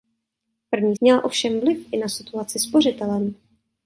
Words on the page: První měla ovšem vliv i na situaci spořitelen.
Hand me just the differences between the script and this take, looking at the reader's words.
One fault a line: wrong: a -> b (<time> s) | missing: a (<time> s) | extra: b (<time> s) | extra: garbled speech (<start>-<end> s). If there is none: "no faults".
no faults